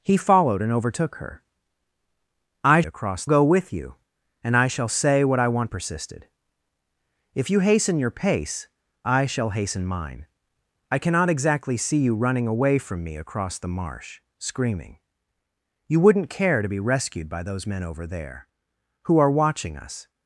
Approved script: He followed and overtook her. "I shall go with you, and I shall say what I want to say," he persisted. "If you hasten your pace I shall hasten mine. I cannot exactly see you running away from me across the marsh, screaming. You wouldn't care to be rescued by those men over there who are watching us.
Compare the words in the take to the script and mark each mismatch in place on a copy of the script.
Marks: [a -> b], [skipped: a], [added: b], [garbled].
He followed and overtook her. "I [shall -> across] go with you, and I shall say what I want [skipped: to say," he] persisted. "If you hasten your pace I shall hasten mine. I cannot exactly see you running away from me across the marsh, screaming. You wouldn't care to be rescued by those men over there who are watching us.